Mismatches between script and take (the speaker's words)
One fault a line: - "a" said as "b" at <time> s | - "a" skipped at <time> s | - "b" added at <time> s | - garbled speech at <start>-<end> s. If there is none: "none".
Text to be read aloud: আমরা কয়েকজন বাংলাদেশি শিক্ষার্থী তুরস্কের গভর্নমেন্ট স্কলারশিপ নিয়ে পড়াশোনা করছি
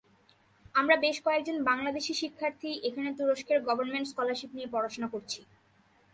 - "বেশ" added at 1.0 s
- "এখানে" added at 2.9 s